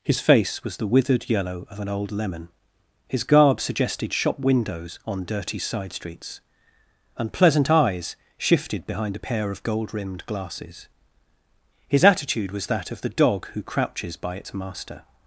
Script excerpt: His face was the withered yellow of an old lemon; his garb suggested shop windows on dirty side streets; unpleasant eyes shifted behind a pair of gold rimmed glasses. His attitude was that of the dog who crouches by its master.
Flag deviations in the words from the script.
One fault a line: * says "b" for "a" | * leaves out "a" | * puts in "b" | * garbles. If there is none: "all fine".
all fine